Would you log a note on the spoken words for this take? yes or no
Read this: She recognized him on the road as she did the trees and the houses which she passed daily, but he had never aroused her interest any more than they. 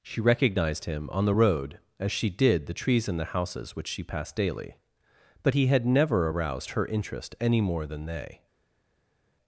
no